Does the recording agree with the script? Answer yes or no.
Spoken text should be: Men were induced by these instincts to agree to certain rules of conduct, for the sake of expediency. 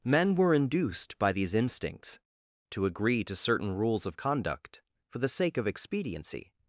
yes